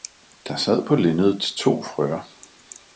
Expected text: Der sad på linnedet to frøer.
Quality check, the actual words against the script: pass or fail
pass